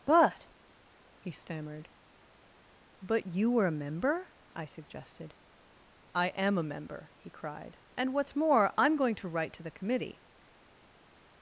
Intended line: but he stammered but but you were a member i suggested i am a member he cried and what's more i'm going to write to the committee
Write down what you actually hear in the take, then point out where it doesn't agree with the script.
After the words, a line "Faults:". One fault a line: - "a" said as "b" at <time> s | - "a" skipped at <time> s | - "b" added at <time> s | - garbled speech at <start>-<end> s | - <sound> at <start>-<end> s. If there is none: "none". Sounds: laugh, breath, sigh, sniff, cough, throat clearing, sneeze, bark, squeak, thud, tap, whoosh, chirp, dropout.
but he stammered but you were a member i suggested i am a member he cried and what's more i'm going to write to the committee
Faults:
- "but" skipped at 3.2 s